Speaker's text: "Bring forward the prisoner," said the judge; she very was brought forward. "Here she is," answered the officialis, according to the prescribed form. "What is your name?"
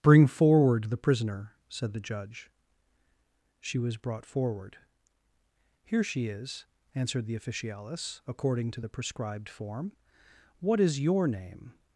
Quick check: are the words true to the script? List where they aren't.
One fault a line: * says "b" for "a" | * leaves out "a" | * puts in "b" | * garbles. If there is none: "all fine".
* leaves out "very"